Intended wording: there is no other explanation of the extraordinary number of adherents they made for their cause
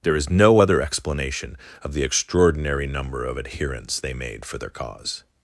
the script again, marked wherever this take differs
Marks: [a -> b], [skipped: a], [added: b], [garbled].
there is no other explanation of the extraordinary number of adherents they made for their cause